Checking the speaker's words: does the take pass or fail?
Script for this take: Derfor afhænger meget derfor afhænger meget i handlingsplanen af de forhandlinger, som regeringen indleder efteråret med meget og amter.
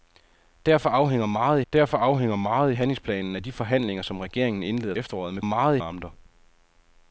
pass